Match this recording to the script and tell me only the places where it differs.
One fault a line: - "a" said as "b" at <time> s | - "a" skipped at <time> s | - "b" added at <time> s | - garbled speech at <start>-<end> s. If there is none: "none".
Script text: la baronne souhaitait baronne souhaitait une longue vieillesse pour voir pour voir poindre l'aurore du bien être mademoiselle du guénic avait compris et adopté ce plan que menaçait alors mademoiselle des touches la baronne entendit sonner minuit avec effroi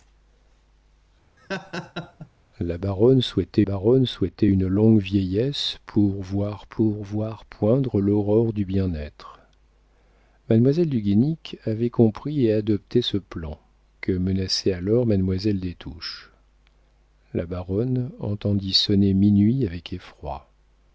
none